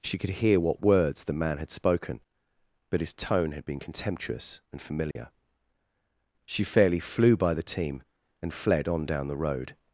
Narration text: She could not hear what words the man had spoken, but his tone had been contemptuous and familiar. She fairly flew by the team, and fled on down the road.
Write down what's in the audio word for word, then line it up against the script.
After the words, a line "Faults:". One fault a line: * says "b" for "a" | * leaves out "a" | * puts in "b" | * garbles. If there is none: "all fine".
She could hear what words the man had spoken, but his tone had been contemptuous and familiar. She fairly flew by the team, and fled on down the road.
Faults:
* leaves out "not"